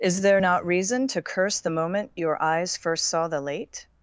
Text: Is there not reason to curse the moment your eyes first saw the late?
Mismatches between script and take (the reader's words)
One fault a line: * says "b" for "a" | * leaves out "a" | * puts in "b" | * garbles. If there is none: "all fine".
all fine